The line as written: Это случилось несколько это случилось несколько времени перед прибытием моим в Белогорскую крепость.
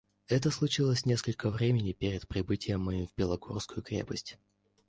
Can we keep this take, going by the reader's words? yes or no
no